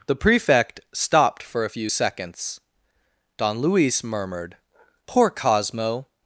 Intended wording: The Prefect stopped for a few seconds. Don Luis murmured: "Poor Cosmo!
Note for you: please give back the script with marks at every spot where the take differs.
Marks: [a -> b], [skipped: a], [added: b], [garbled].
The Prefect stopped for a few seconds. Don Luis murmured: "Poor Cosmo!